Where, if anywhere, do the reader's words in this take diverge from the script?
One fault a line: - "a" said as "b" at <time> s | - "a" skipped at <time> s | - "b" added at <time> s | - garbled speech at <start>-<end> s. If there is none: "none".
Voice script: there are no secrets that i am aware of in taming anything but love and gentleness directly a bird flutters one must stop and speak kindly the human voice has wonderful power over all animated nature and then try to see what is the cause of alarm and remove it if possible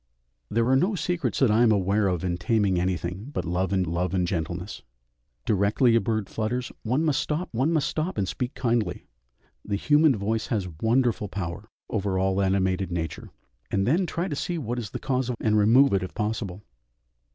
- "love and" added at 3.8 s
- "one must stop" added at 7.5 s
- "alarm" skipped at 15.4 s